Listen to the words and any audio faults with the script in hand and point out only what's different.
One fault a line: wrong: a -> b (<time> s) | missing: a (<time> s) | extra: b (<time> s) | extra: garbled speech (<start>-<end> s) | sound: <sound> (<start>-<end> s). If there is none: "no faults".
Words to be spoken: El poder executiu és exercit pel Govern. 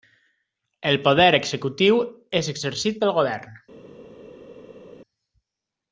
no faults